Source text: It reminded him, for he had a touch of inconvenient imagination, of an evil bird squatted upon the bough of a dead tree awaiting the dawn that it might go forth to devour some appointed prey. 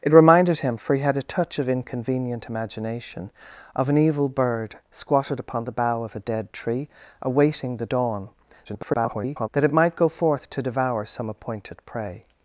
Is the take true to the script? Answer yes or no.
no